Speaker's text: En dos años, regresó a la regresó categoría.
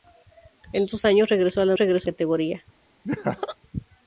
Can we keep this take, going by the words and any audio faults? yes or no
no